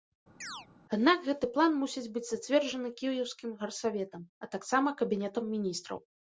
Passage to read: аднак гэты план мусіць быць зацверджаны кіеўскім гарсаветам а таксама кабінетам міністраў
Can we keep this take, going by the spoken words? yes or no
yes